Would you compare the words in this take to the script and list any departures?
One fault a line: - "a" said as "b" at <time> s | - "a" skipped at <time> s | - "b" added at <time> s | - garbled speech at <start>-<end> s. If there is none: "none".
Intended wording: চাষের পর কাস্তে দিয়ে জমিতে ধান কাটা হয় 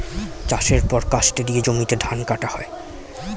none